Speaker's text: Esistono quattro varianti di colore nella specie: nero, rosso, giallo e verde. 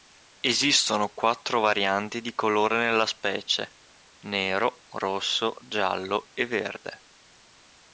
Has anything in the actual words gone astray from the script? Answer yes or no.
no